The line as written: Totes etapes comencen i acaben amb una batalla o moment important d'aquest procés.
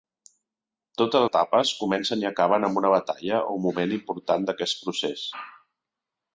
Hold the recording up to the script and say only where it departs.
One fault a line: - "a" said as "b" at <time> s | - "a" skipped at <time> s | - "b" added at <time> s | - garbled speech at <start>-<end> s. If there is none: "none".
none